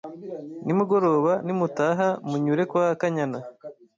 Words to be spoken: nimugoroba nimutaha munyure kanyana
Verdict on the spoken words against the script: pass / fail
fail